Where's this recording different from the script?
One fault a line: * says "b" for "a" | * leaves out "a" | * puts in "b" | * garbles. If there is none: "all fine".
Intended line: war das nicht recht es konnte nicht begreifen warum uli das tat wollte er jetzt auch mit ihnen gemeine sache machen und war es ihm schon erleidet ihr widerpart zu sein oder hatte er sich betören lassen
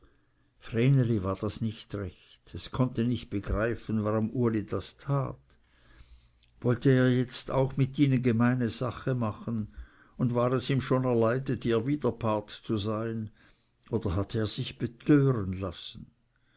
all fine